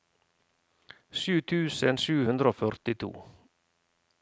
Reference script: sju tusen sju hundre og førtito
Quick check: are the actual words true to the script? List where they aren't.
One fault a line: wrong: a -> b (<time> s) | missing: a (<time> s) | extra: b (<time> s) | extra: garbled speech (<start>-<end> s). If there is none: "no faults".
no faults